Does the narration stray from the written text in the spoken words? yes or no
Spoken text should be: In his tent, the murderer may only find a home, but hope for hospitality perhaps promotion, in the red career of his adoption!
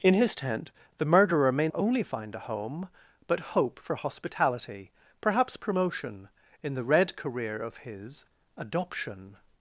no